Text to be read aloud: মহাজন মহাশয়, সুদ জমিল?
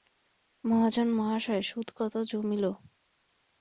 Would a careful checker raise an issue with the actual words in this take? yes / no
yes